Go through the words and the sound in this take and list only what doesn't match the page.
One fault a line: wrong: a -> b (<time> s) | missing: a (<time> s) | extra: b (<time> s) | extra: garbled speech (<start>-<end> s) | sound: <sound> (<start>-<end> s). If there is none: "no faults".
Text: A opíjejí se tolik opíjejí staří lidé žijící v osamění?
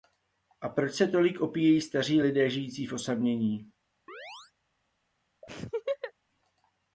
wrong: opíjejí -> proč (0.7 s)
sound: chirp (4.1-4.5 s)
sound: laugh (5.4-6.1 s)